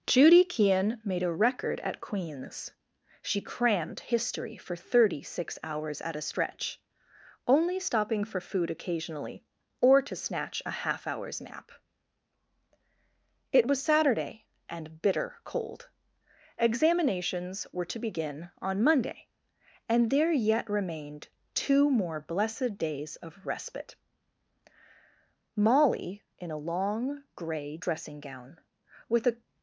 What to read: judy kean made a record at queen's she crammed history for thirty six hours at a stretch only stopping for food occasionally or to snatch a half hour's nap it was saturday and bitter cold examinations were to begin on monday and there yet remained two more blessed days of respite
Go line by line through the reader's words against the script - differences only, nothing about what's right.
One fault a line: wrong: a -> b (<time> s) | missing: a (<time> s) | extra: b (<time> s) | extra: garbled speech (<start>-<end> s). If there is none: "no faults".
extra: molly in a long gray dressing gown with a (25.6 s)